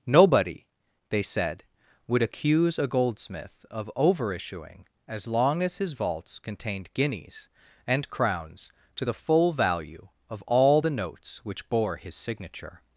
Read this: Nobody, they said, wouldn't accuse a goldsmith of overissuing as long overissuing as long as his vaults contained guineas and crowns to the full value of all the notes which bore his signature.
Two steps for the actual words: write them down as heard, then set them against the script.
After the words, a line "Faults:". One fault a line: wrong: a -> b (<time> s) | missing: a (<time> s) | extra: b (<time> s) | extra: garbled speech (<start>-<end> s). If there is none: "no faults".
Nobody, they said, would accuse a goldsmith of overissuing as long as his vaults contained guineas and crowns to the full value of all the notes which bore his signature.
Faults:
wrong: wouldn't -> would (2.1 s)
missing: overissuing as long (5.6 s)